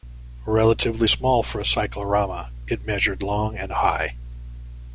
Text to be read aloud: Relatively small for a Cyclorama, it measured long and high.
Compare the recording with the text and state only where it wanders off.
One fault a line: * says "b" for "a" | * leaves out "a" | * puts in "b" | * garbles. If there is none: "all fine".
all fine